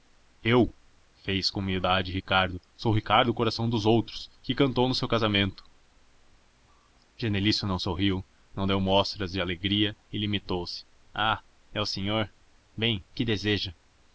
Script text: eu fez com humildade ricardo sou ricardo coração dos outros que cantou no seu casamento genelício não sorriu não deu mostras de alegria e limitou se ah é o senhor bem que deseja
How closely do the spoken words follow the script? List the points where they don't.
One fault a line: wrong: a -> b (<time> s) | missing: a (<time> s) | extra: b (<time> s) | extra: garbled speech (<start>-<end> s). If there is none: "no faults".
no faults